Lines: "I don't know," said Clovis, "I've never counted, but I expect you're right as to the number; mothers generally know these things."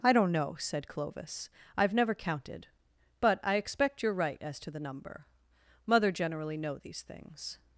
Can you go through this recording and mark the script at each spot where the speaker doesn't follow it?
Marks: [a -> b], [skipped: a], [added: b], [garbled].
"I don't know," said Clovis, "I've never counted, but I expect you're right as to the number; [mothers -> mother] generally know these things."